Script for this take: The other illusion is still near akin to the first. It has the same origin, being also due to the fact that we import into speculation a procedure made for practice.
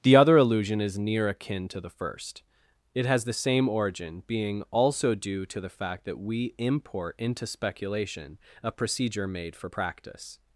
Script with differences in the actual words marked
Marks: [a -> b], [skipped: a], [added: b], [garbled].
The other illusion is [skipped: still] near akin to the first. It has the same origin, being also due to the fact that we import into speculation a procedure made for practice.